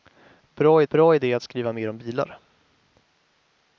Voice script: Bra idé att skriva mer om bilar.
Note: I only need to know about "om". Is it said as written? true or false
true